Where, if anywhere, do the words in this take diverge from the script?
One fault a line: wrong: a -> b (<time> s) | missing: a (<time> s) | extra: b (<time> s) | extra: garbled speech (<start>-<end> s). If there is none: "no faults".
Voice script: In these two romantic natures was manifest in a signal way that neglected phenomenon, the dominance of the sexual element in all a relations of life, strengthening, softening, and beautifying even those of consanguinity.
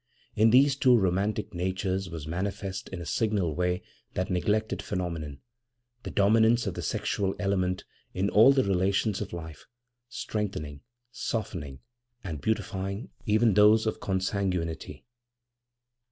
wrong: a -> the (8.5 s)